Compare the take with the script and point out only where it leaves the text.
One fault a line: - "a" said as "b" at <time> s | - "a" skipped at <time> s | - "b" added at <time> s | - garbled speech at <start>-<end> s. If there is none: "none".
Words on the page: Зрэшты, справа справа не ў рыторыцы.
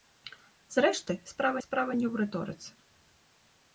none